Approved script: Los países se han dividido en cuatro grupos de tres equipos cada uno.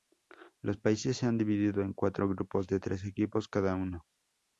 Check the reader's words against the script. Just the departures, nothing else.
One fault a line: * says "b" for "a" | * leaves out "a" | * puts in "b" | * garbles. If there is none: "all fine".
all fine